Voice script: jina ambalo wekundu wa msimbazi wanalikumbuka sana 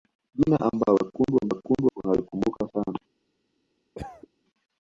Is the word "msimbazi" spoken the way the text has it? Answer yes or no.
no